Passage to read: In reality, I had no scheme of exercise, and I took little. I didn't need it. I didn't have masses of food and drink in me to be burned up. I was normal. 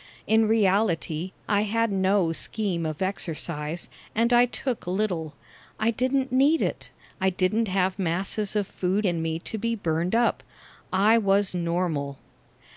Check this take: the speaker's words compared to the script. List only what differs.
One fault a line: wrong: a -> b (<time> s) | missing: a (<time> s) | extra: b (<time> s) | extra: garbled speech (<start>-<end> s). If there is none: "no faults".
missing: and drink (9.1 s)